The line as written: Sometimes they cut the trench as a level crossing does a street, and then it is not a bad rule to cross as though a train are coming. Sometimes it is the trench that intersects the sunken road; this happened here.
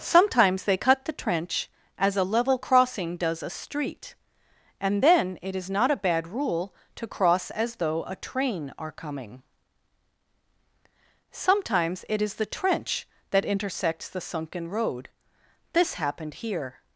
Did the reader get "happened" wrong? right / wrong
right